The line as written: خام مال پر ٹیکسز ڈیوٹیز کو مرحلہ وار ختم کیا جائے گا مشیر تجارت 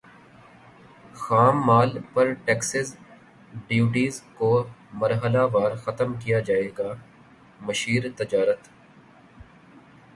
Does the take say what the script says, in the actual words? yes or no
yes